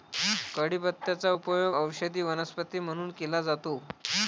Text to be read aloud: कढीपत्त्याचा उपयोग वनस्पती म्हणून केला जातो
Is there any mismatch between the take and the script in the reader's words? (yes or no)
yes